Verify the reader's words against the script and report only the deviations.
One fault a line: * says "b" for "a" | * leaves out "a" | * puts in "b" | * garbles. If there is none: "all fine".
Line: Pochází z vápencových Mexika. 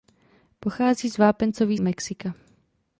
all fine